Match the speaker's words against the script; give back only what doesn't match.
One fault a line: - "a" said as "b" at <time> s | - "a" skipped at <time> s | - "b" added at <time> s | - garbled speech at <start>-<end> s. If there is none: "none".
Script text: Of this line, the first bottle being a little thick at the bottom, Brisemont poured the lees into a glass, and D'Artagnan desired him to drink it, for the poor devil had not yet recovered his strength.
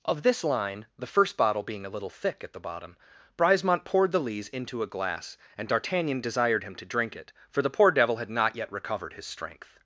none